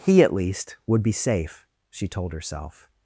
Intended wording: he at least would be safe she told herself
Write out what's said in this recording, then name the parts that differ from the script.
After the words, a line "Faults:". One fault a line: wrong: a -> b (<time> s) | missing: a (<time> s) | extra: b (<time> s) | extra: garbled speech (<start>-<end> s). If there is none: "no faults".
he at least would be safe she told herself
Faults:
no faults